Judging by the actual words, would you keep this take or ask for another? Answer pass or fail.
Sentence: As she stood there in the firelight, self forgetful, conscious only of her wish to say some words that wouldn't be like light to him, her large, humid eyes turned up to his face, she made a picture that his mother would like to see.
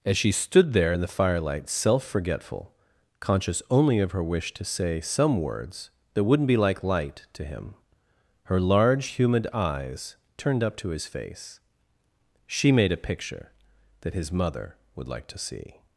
pass